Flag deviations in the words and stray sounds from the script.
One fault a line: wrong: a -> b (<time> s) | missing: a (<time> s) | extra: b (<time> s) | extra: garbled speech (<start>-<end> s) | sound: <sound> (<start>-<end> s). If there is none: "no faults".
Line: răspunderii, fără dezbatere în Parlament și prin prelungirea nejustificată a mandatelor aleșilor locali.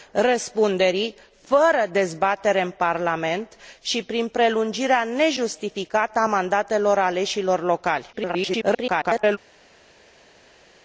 extra: garbled speech (8.1-9.4 s)